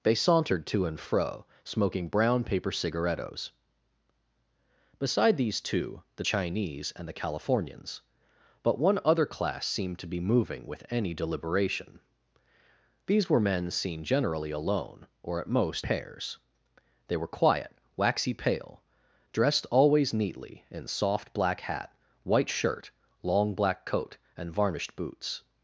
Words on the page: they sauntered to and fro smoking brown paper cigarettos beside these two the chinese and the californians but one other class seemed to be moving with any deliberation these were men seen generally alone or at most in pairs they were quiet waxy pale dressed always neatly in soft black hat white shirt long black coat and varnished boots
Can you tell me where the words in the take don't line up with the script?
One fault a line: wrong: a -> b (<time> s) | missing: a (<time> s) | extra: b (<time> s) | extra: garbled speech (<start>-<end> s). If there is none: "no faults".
missing: in (15.9 s)